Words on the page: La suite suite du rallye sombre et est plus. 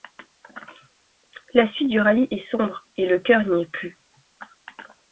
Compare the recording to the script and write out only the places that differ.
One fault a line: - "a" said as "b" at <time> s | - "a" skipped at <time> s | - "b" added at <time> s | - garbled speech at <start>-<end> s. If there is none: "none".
- "suite" skipped at 1.9 s
- "est" added at 2.3 s
- "le cœur n'y" added at 3.1 s